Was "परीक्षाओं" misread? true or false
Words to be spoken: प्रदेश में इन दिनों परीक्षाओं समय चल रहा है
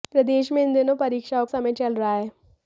false